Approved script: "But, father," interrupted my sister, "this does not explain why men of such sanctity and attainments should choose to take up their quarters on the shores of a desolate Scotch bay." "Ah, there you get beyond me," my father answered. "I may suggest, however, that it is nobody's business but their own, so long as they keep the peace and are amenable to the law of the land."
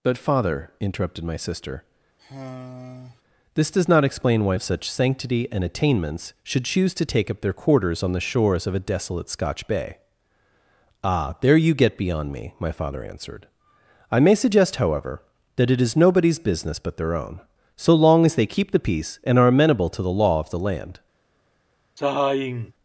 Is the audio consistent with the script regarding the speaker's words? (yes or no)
no